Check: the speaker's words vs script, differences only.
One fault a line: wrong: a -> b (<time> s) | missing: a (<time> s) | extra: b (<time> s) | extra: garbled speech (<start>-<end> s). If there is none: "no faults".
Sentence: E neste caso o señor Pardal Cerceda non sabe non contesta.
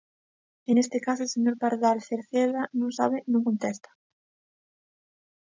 no faults